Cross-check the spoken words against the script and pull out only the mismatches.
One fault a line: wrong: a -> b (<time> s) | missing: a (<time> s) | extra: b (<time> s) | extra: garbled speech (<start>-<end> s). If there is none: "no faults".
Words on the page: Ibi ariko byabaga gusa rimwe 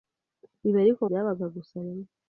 no faults